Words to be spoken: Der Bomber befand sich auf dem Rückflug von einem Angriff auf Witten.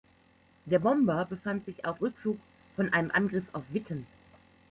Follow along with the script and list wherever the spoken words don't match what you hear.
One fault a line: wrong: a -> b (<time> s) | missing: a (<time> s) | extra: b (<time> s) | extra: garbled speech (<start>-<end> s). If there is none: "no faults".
missing: dem (2.0 s)